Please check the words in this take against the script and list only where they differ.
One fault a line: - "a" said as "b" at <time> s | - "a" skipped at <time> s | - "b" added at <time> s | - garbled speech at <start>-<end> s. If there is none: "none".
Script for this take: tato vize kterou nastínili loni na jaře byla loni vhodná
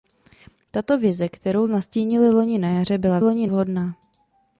none